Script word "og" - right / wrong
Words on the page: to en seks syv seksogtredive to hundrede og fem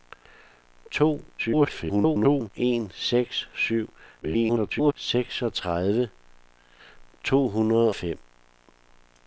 wrong